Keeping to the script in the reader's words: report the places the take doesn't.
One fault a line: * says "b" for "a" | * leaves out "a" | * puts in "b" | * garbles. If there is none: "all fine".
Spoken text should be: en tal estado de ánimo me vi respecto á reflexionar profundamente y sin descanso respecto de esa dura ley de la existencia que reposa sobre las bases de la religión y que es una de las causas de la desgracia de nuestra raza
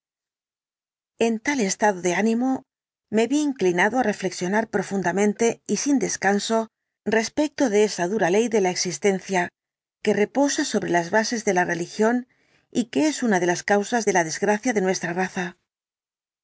* says "inclinado" for "respecto"